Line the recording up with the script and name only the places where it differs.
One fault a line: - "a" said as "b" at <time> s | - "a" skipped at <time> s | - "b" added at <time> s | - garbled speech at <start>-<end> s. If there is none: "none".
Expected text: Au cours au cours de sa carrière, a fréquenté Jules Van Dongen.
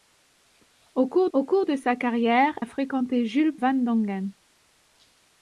none